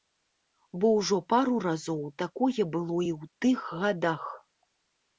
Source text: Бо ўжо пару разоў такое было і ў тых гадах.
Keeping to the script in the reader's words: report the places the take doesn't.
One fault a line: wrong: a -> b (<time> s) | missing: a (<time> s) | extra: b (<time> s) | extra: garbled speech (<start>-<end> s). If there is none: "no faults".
no faults